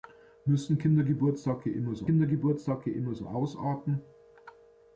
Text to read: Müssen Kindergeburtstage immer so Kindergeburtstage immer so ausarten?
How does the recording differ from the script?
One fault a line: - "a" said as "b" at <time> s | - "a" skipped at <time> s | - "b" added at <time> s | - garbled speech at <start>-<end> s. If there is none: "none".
none